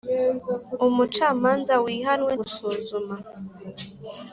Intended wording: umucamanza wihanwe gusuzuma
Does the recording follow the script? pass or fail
pass